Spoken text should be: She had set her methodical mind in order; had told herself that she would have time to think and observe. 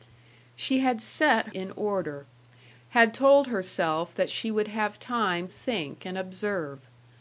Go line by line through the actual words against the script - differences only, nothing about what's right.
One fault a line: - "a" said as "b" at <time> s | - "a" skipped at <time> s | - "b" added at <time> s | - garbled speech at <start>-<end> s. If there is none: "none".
- "her methodical mind" skipped at 1.5 s
- "to" skipped at 5.5 s